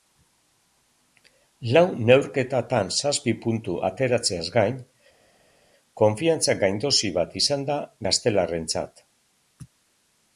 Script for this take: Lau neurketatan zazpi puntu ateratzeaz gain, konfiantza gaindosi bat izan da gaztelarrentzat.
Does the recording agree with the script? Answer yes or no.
yes